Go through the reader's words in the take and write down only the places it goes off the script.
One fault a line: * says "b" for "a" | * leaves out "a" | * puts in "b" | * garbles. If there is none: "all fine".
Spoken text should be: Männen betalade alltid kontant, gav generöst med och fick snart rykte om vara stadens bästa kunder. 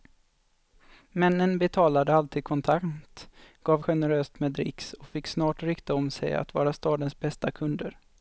* puts in "dricks"
* puts in "sig att"